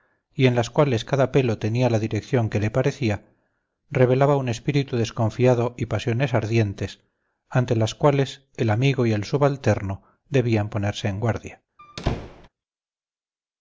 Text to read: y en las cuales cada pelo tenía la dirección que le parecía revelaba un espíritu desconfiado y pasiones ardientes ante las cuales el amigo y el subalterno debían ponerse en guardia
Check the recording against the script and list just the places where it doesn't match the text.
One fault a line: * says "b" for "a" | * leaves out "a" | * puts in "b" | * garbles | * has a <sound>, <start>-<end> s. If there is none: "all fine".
* has a squeak, 11.8-12.5 s